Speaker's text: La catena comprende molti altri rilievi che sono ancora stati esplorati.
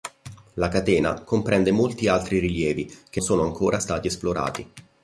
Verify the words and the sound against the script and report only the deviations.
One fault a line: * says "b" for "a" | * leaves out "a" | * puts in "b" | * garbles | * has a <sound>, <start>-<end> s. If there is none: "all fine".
all fine